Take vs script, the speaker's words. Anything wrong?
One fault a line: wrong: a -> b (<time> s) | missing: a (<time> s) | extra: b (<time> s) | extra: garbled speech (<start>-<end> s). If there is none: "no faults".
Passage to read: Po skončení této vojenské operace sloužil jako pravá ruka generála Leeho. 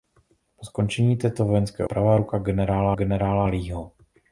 missing: operace sloužil jako (1.9 s)
extra: generála (2.9 s)